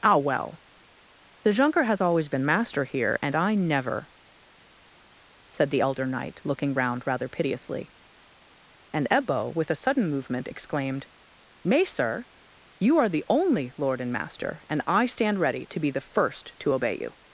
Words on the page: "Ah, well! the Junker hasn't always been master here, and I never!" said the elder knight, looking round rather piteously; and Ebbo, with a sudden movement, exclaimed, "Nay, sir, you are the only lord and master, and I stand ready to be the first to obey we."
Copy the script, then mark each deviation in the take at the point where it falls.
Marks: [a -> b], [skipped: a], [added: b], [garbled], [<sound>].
"Ah, well! the Junker [hasn't -> has] always been master here, and I never!" said the elder knight, looking round rather piteously; and Ebbo, with a sudden movement, exclaimed, "Nay, sir, you are the only lord and master, and I stand ready to be the first to obey [we." -> you]